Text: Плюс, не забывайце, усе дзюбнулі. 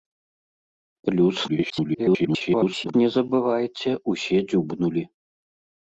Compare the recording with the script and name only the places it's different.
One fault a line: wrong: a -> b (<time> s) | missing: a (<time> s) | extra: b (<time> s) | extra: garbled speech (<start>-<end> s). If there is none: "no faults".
extra: garbled speech (1.5-2.9 s)